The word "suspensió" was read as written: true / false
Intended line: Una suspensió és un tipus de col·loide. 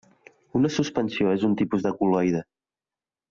true